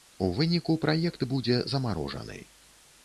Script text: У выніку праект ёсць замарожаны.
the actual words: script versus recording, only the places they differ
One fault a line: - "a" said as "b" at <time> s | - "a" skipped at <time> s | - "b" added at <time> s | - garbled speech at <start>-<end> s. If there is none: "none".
- "ёсць" said as "будзе" at 1.3 s